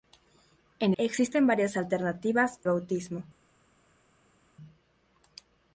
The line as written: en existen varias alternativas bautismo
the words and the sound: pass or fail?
pass